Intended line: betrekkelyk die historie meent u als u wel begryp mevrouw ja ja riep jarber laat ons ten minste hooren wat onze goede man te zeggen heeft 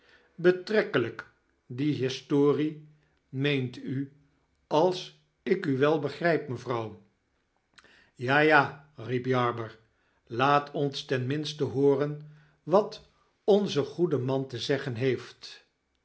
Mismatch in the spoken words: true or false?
true